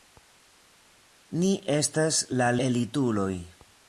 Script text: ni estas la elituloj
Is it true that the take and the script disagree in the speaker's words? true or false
false